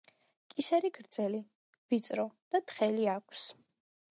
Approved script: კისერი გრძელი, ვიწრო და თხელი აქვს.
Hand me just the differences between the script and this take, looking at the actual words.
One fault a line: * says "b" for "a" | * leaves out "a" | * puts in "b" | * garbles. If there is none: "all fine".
all fine